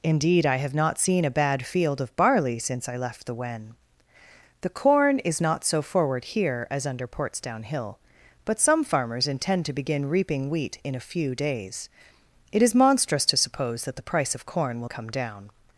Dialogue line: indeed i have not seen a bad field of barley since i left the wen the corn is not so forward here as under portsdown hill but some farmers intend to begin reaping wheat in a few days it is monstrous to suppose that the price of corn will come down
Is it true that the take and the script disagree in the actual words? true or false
false